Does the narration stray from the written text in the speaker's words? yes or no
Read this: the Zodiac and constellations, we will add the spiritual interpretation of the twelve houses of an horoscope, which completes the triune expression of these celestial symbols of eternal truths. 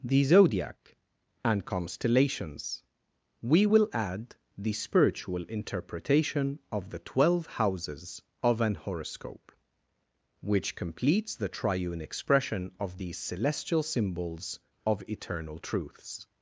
no